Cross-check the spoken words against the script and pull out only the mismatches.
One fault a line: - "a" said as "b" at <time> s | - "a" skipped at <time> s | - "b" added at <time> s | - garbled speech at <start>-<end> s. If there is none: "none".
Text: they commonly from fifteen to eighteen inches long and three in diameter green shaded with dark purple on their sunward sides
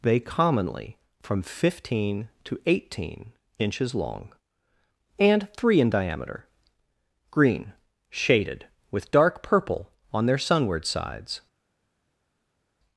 none